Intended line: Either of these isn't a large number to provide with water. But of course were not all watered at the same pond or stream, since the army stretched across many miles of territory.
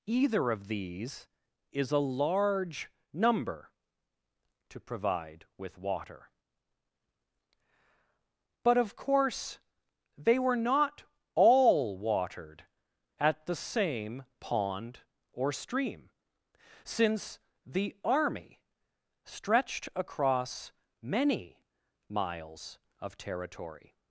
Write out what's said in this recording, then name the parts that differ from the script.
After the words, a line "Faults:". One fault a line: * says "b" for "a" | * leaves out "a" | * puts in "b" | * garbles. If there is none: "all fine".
Either of these is a large number to provide with water. But of course they were not all watered at the same pond or stream, since the army stretched across many miles of territory.
Faults:
* says "is" for "isn't"
* puts in "they"